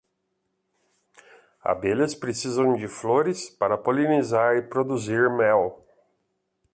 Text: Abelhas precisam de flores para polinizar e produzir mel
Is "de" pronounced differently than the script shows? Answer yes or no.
no